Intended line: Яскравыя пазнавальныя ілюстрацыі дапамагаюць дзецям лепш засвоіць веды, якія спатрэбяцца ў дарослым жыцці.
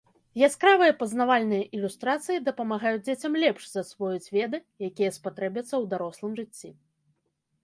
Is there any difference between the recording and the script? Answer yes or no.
no